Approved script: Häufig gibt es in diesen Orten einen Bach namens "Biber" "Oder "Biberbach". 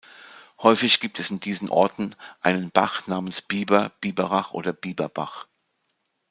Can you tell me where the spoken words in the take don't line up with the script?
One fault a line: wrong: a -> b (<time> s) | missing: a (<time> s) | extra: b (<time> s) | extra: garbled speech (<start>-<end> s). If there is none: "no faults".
extra: Biberach (4.0 s)